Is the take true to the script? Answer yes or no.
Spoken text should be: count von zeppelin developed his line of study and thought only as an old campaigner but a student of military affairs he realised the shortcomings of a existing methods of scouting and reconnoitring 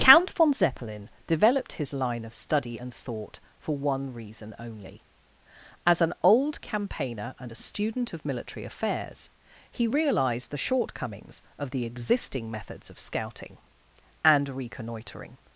no